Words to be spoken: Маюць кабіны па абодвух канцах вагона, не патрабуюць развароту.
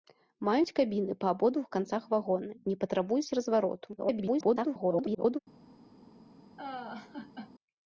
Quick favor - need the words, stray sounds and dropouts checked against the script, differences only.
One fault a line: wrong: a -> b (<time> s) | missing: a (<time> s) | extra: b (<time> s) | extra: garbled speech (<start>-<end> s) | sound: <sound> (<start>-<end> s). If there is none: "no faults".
extra: garbled speech (4.0-5.4 s)
sound: laugh (6.6-7.5 s)